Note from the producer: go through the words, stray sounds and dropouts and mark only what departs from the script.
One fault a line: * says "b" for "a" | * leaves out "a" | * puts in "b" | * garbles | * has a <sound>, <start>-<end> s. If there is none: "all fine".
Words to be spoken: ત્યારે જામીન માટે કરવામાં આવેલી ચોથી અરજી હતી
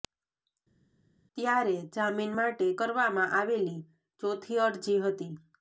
all fine